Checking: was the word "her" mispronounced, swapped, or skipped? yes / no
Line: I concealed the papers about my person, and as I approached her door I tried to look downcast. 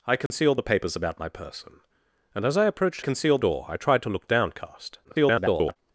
yes